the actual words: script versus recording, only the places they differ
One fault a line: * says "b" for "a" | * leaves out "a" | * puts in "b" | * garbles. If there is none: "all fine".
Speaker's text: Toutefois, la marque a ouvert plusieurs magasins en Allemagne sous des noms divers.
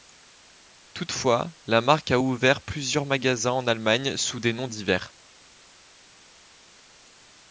all fine